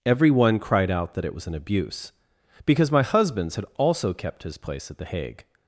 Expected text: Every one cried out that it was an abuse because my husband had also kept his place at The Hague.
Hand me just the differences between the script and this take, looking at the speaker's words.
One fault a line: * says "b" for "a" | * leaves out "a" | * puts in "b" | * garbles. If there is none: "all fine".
* says "husbands" for "husband"